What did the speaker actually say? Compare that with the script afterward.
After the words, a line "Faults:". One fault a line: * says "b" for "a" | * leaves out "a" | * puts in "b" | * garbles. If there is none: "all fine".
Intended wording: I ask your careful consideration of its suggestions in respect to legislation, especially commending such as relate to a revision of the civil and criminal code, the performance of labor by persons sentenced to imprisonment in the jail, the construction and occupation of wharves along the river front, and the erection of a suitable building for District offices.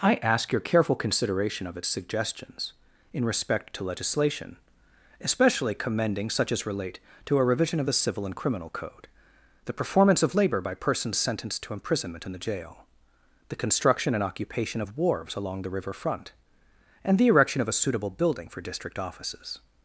I ask your careful consideration of its suggestions in respect to legislation, especially commending such as relate to a revision of the civil and criminal code, the performance of labor by persons sentenced to imprisonment in the jail, the construction and occupation of wharves along the river front, and the erection of a suitable building for District offices.
Faults:
all fine